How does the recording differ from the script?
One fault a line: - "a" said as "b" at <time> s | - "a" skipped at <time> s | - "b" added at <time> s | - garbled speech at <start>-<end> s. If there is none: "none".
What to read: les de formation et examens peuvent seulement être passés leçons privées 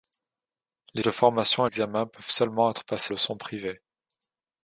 none